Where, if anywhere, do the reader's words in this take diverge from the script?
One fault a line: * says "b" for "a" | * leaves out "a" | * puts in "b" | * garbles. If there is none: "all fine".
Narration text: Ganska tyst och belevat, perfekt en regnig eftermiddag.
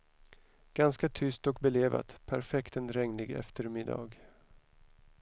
all fine